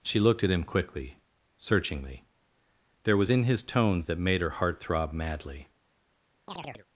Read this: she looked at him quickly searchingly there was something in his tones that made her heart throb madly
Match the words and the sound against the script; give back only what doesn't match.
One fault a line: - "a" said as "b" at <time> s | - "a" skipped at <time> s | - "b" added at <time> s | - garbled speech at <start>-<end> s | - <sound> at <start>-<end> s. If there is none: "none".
- "something" skipped at 3.3 s
- chirp at 6.5-6.9 s